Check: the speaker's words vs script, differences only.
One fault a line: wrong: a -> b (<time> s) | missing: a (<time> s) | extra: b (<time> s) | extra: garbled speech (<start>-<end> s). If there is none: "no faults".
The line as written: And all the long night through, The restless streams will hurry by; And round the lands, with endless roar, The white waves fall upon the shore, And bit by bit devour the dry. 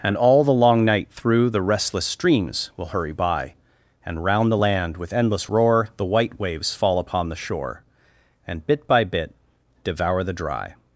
wrong: lands -> land (4.6 s)